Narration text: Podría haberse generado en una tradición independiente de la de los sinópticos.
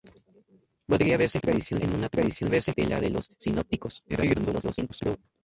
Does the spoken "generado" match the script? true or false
false